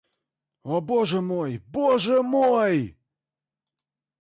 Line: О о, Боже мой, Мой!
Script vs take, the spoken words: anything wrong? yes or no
yes